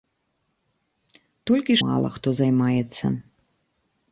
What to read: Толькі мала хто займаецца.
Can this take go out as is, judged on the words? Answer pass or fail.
pass